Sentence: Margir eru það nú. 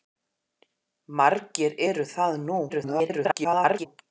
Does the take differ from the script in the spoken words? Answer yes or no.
yes